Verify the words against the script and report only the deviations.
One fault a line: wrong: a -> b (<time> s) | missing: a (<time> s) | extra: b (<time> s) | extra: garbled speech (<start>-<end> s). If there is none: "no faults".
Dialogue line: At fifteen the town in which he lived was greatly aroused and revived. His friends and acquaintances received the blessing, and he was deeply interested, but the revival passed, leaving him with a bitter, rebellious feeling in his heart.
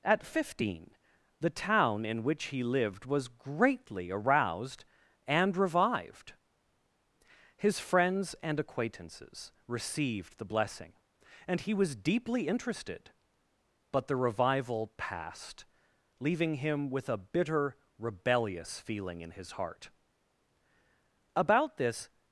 extra: About this (21.4 s)